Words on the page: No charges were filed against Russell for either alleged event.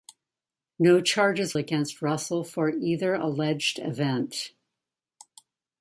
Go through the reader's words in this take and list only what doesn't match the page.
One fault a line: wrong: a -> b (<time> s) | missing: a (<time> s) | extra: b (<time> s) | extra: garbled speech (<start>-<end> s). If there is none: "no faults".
missing: were filed (1.6 s)